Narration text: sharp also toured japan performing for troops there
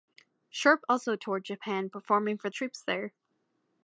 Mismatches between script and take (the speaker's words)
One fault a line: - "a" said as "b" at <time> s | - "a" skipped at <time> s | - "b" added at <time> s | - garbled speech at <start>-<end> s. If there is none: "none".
none